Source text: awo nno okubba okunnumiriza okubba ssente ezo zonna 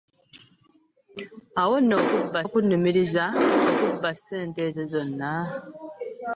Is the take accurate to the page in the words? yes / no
yes